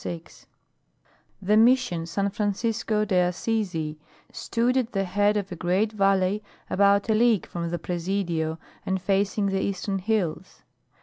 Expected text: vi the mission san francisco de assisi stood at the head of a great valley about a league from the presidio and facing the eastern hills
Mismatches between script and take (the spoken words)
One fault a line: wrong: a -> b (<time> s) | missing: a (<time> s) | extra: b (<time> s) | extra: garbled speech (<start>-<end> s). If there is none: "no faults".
no faults